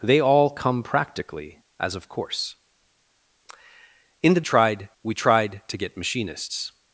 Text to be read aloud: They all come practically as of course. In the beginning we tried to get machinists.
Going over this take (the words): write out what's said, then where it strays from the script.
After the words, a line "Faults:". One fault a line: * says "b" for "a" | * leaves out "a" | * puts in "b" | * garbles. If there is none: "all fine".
They all come practically as of course. In the tried we tried to get machinists.
Faults:
* says "tried" for "beginning"